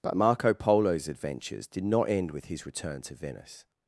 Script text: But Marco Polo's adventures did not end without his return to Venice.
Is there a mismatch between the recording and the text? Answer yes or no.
yes